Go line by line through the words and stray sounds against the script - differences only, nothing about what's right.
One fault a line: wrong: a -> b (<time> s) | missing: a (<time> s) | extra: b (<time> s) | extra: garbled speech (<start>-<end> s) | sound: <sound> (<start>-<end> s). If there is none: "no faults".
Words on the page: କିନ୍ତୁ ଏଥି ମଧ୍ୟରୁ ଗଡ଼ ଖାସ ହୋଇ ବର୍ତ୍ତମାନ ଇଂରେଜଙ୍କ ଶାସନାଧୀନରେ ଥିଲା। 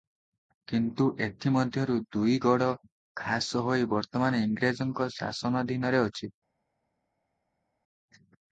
extra: ଦୁଇ (2.1 s)
wrong: ଥିଲା -> ଅଛି (6.0 s)